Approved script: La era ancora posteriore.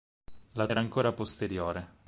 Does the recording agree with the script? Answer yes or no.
yes